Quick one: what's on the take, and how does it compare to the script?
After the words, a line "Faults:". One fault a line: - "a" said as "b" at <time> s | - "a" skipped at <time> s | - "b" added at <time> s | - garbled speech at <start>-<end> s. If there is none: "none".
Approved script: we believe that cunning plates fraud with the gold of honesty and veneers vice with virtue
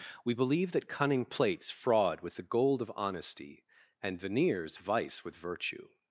we believe that cunning plates fraud with the gold of honesty and veneers vice with virtue
Faults:
none